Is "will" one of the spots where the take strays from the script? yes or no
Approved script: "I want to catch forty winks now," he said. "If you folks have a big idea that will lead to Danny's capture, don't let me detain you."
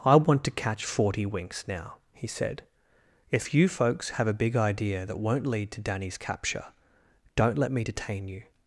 yes